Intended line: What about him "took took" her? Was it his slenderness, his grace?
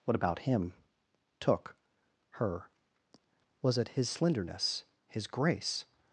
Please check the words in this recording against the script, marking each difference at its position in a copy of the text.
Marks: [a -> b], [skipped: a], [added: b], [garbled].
What about him "took [skipped: took"] her? Was it his slenderness, his grace?